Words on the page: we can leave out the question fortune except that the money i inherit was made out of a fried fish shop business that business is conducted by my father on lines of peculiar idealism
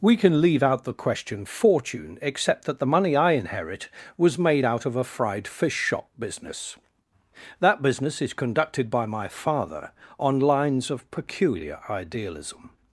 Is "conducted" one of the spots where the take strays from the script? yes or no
no